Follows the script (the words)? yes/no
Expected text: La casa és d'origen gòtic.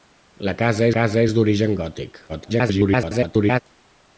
no